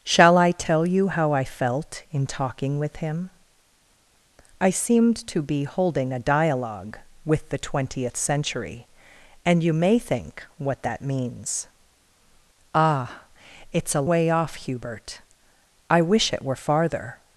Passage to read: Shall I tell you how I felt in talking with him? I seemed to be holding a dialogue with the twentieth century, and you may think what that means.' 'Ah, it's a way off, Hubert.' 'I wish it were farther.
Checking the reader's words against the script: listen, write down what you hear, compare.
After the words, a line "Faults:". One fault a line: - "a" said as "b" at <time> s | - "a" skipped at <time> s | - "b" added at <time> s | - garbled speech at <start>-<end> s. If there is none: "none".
Shall I tell you how I felt in talking with him? I seemed to be holding a dialogue with the twentieth century, and you may think what that means.' 'Ah, it's a way off, Hubert.' 'I wish it were farther.
Faults:
none